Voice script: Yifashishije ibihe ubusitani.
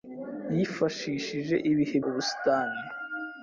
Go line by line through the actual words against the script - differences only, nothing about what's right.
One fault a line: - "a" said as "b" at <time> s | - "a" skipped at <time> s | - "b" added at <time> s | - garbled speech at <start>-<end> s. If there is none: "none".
none